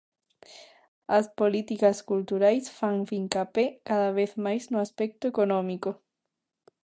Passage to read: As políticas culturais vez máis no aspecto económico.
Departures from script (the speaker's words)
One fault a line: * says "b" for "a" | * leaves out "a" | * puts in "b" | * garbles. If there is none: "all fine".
* puts in "fan fincapé cada"